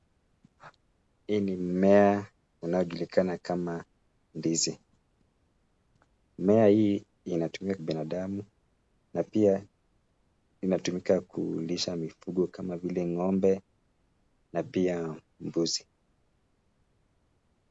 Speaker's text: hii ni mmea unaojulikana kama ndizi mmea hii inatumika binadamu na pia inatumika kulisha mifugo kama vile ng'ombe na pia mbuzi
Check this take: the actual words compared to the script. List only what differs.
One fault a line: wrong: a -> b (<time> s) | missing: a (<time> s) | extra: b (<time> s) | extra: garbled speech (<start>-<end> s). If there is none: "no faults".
no faults